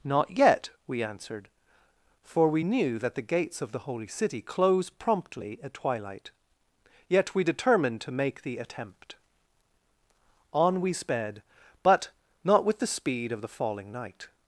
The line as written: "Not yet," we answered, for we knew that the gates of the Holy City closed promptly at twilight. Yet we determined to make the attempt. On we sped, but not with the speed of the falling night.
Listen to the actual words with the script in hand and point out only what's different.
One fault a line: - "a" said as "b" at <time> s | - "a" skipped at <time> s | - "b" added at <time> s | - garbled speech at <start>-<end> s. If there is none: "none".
- "closed" said as "close" at 4.4 s